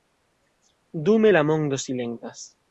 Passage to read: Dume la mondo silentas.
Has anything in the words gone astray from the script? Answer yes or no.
no